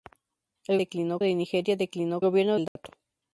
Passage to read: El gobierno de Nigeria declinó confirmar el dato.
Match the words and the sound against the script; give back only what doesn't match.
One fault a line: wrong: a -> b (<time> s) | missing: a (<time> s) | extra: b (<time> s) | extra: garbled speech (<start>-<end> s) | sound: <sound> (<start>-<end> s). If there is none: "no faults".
wrong: gobierno -> declinó (0.7 s)
wrong: confirmar -> gobierno (2.2 s)
sound: dropout (2.7-2.8 s)